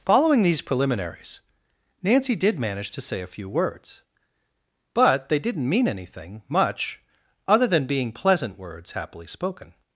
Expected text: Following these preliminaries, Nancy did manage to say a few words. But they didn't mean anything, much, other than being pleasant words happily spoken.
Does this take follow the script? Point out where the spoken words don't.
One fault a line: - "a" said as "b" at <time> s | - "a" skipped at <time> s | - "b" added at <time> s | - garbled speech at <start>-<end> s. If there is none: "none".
none